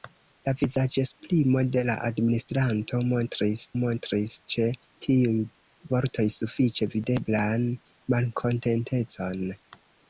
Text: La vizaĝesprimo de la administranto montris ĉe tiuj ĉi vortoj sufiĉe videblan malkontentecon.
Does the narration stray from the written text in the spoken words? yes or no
yes